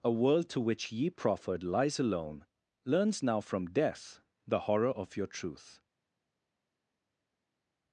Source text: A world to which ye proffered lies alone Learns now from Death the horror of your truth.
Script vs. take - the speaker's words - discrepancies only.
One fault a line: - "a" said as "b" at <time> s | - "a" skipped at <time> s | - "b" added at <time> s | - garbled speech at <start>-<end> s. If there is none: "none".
none